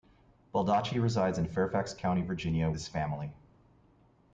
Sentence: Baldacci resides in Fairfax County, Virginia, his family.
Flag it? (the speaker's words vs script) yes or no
no